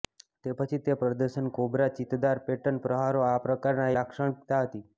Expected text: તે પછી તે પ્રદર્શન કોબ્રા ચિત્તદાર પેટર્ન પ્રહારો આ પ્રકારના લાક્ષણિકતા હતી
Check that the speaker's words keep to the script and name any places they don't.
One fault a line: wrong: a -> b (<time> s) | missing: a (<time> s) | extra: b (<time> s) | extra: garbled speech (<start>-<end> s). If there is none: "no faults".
no faults